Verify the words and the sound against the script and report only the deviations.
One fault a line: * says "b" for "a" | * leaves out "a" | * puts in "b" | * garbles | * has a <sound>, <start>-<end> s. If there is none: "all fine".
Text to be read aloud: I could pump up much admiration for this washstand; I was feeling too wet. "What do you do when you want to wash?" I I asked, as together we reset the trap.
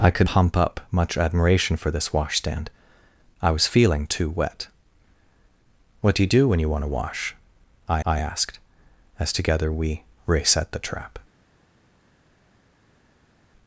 all fine